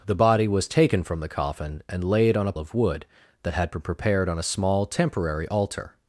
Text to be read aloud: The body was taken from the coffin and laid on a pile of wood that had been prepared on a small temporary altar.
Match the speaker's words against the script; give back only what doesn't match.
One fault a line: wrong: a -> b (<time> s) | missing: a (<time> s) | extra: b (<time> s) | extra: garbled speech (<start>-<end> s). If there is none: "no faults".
missing: pile (2.5 s)